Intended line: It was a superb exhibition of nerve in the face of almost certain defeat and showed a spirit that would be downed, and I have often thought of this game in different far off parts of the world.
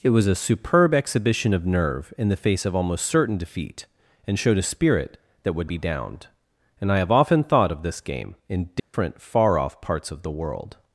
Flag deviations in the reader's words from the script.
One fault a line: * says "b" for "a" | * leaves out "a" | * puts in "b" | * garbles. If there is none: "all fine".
all fine